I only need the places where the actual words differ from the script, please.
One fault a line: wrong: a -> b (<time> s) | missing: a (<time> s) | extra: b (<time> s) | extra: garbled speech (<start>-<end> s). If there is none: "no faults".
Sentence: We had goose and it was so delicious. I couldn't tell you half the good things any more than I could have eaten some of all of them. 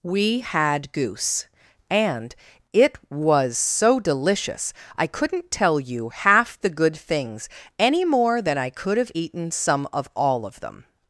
no faults